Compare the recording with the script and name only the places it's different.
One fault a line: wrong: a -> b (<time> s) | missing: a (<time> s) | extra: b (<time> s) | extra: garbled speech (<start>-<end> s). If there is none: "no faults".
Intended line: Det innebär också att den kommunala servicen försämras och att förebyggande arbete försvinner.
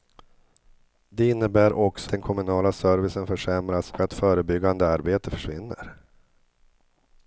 missing: att (2.1 s)
missing: och (3.9 s)